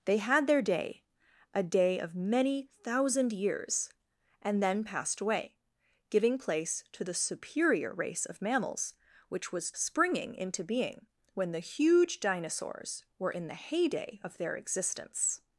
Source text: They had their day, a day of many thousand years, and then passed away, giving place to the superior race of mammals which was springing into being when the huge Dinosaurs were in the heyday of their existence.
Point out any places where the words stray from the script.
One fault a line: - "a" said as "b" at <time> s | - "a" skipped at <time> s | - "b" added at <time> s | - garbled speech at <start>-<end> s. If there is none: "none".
none